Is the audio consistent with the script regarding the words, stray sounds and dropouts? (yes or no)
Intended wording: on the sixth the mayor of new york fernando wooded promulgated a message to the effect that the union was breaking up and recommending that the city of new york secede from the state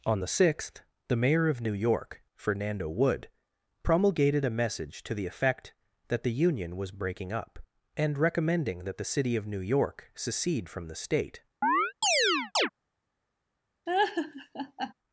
no